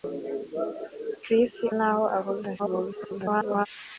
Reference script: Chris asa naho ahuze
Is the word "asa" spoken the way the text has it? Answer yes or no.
no